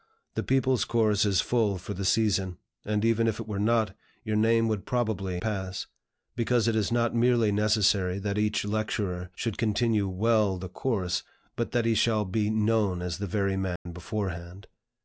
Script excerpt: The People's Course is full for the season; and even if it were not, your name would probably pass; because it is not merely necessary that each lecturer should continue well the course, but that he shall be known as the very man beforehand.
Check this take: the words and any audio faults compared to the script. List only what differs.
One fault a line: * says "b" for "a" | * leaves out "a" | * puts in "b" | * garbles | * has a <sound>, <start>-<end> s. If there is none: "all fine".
* has a dropout, 13.8-13.9 s